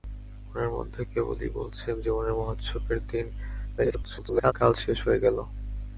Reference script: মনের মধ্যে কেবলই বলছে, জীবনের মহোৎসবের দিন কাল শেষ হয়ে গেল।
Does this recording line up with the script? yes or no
no